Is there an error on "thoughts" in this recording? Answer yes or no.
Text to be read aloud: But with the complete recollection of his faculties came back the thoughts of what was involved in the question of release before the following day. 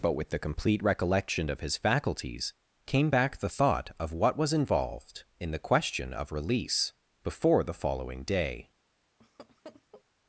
yes